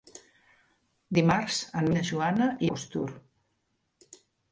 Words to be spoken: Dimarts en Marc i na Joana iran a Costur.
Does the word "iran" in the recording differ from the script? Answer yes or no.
yes